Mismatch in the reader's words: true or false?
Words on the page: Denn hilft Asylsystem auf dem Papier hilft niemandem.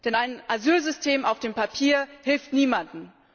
true